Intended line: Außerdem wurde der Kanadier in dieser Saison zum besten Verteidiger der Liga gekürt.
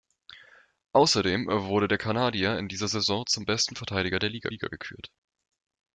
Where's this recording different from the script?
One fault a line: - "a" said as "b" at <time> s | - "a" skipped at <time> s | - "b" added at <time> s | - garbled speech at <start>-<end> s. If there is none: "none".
- "Liga" added at 4.5 s